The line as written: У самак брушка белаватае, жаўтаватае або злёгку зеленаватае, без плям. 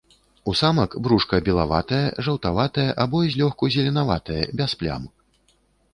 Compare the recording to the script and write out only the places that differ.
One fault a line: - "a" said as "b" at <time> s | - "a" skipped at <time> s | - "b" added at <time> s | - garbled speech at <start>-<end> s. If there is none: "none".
none